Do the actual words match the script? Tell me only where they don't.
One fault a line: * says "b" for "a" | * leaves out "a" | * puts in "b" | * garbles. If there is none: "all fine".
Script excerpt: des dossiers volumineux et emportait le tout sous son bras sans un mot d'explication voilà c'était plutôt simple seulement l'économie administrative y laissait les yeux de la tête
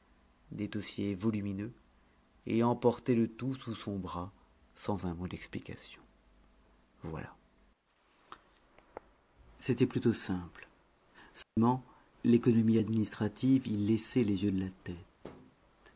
all fine